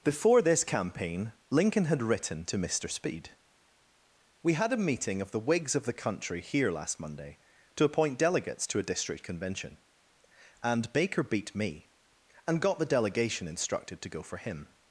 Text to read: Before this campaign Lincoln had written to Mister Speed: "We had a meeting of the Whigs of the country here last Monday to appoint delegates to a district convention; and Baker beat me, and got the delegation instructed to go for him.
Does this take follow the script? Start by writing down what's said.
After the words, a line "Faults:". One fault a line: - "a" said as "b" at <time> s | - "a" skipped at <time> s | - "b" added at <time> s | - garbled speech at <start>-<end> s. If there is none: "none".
Before this campaign Lincoln had written to Mister Speed: "We had a meeting of the Whigs of the country here last Monday to appoint delegates to a district convention; and Baker beat me, and got the delegation instructed to go for him.
Faults:
none